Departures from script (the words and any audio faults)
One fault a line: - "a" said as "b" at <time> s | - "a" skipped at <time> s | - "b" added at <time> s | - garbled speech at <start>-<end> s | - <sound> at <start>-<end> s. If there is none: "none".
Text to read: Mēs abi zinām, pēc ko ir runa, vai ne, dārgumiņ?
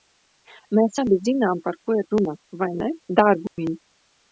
- "pēc" said as "par" at 1.7 s
- dropout at 3.5-3.6 s